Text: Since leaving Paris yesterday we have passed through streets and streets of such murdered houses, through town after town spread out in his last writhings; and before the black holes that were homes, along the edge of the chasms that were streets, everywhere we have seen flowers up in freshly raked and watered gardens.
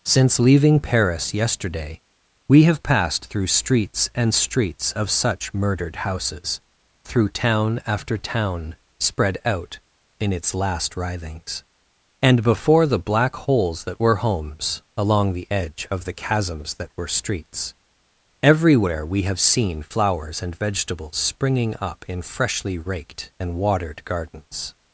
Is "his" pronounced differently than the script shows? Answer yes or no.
yes